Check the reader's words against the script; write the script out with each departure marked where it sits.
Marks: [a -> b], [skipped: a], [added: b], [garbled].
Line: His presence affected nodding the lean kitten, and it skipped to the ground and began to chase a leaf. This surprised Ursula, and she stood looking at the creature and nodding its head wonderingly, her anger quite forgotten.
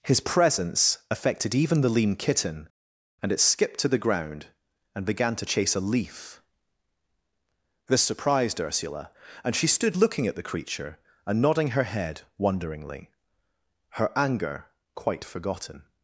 His presence affected [nodding -> even] the lean kitten, and it skipped to the ground and began to chase a leaf. This surprised Ursula, and she stood looking at the creature and nodding [its -> her] head wonderingly, her anger quite forgotten.